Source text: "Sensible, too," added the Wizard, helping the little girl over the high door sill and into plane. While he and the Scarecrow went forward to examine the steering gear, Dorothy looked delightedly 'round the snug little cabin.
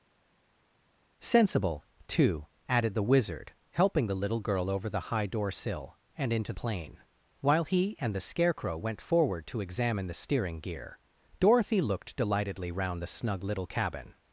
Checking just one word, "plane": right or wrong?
right